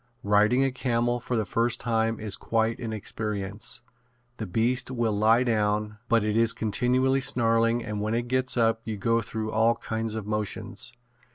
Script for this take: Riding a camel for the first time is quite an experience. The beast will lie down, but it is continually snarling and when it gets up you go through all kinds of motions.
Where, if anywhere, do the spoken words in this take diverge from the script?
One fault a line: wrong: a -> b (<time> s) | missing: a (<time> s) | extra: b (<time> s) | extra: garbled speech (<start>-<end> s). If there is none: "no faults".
no faults